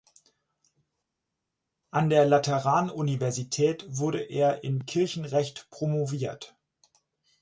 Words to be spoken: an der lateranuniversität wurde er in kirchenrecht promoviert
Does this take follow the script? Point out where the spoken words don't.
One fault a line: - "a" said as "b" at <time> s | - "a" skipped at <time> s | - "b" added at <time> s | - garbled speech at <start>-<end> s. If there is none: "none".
none